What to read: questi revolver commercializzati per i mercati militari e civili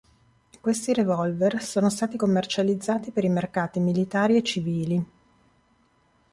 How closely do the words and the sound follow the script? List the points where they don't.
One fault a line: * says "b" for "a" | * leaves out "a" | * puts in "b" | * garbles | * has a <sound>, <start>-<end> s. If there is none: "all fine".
* puts in "sono stati"